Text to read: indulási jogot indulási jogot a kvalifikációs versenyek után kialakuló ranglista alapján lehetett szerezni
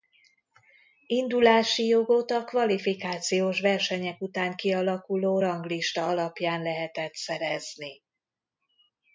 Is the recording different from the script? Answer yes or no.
yes